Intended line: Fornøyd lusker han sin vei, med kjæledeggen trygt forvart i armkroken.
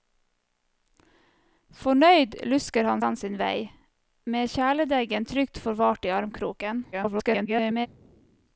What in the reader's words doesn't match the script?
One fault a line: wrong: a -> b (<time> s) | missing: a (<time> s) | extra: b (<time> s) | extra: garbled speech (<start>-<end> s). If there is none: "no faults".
extra: han (3.0 s)
extra: garbled speech (6.9-7.9 s)